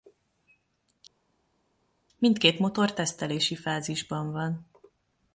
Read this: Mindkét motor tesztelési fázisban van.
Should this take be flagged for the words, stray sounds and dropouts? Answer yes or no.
no